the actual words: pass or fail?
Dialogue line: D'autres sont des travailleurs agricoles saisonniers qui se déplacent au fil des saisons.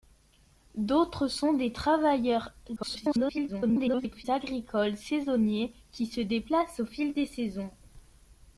fail